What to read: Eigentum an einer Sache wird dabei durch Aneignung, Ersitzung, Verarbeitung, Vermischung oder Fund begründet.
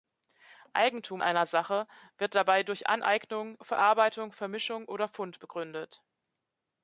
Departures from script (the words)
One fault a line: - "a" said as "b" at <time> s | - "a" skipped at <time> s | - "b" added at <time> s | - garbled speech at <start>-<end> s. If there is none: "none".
- "an" skipped at 1.2 s
- "Ersitzung" skipped at 3.6 s